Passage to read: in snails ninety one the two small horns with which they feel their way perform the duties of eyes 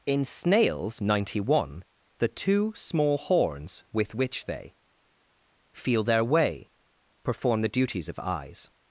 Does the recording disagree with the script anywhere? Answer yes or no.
no